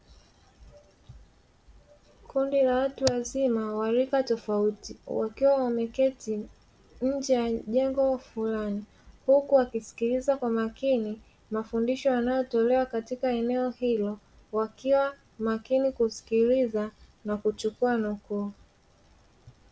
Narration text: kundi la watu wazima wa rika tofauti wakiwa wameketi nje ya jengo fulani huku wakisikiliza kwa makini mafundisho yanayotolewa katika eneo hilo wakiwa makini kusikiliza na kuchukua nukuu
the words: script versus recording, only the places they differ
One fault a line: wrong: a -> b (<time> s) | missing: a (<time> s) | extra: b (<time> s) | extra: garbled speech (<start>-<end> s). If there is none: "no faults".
no faults